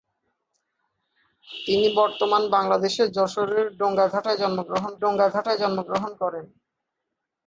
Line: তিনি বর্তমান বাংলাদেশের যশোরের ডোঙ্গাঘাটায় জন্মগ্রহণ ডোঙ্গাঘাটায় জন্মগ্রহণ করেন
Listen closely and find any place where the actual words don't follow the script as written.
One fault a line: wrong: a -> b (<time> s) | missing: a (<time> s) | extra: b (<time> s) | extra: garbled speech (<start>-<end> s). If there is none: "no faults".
no faults